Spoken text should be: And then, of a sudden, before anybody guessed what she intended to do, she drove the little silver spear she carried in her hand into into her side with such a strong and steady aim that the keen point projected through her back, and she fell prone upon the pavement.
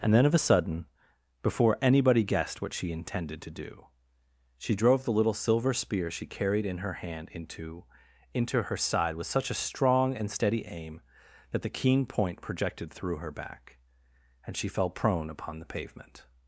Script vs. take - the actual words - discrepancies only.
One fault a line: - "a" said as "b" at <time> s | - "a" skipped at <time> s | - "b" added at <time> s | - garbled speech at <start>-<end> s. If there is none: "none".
none